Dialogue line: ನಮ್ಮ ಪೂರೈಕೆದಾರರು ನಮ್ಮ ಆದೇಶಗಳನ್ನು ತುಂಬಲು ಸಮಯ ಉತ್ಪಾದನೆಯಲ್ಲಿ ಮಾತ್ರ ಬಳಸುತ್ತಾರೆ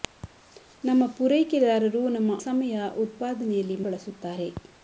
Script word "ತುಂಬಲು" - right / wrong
wrong